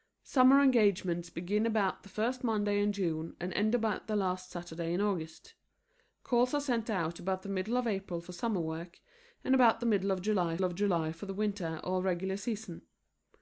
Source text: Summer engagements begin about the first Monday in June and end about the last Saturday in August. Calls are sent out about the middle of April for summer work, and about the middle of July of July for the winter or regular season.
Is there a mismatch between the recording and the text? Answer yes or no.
no